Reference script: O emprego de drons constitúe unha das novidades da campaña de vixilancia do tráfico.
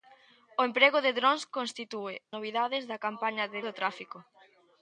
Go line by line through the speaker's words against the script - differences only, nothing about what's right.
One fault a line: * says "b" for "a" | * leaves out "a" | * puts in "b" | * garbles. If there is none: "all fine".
* leaves out "unha das"
* leaves out "vixilancia"